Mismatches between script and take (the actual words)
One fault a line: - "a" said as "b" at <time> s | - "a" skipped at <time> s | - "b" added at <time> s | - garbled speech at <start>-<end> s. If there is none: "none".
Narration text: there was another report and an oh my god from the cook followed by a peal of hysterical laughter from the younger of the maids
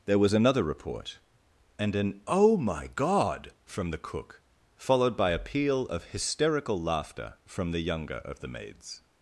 none